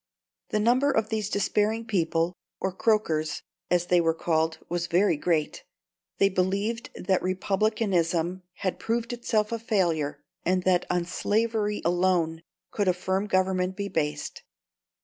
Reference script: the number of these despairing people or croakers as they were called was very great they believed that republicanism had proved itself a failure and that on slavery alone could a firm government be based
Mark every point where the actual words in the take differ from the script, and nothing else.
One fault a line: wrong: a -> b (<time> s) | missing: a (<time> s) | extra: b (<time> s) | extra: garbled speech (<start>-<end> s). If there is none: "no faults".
no faults